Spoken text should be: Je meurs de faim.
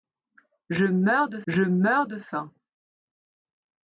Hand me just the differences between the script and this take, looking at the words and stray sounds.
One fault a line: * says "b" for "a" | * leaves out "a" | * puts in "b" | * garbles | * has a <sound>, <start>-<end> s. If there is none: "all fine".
* puts in "je meurs de"